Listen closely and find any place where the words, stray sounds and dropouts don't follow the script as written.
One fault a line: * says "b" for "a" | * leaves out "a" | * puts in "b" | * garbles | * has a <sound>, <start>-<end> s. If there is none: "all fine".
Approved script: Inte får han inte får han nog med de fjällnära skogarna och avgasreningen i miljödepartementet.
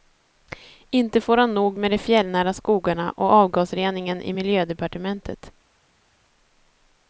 * leaves out "inte får han"